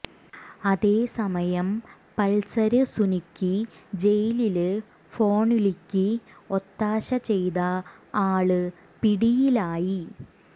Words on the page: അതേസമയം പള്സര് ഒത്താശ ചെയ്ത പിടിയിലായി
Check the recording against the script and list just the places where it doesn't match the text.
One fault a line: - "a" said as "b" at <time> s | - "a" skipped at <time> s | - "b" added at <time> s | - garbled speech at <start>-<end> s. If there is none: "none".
- "സുനിക്ക് ജയിലില് ഫോണ്വിളിക്ക്" added at 2.9 s
- "ആള്" added at 8.3 s